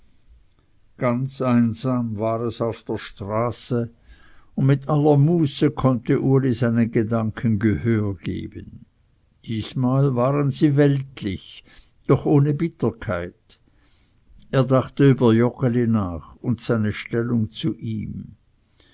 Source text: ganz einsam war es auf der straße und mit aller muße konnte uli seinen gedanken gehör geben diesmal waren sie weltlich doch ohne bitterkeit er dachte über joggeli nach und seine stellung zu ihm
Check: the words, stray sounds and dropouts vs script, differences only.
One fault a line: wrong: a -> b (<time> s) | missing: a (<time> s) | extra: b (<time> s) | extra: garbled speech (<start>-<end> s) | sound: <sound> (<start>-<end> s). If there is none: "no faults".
no faults